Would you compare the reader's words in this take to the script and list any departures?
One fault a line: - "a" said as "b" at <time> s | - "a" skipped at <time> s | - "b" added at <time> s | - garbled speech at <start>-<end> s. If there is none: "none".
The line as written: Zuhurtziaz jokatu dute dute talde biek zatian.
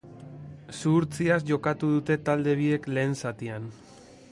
- "dute" skipped at 2.2 s
- "lehen" added at 3.0 s